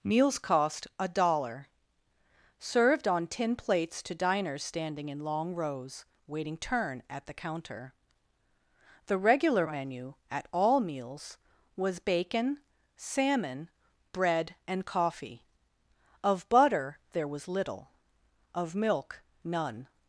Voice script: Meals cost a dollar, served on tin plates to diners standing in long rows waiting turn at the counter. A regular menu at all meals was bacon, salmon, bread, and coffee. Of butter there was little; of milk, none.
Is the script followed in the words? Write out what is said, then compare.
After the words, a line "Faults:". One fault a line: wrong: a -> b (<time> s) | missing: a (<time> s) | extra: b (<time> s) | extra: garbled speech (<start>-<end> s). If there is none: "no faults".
Meals cost a dollar, served on tin plates to diners standing in long rows waiting turn at the counter. The regular menu at all meals was bacon, salmon, bread, and coffee. Of butter there was little; of milk, none.
Faults:
wrong: A -> The (9.1 s)